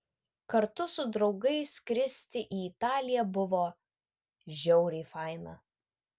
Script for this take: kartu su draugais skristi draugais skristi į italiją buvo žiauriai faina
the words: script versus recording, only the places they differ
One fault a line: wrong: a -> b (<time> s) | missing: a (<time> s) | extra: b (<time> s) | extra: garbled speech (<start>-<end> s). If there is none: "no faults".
missing: draugais skristi (2.4 s)